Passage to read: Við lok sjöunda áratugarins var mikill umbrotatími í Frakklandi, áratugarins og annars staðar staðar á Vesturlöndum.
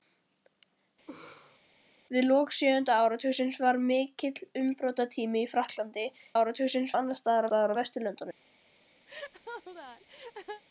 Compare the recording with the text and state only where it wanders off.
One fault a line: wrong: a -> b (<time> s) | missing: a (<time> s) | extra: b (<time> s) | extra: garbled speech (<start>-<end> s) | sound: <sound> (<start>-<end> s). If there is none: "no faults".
sound: laugh (1.1-1.6 s)
sound: laugh (9.1-10.6 s)